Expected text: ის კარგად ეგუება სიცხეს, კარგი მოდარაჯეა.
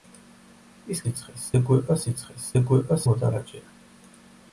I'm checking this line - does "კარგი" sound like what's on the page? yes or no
no